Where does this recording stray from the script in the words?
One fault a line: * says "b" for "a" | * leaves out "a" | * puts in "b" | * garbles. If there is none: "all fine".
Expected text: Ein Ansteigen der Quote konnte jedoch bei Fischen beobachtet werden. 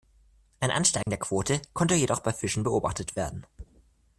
all fine